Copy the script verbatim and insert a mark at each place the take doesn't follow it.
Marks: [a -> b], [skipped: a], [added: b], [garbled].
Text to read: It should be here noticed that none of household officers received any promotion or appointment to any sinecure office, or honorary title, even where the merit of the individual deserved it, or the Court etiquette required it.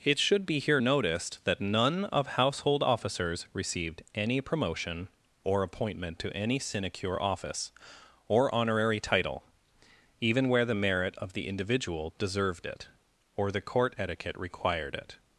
It should be here noticed that none of household officers received any promotion or appointment to any sinecure office, or honorary title, even where the merit of the individual deserved it, or the Court etiquette required it.